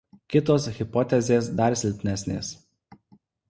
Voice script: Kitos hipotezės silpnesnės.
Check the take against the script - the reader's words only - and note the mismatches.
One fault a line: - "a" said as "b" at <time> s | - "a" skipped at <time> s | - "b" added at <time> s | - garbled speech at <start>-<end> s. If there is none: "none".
- "dar" added at 1.6 s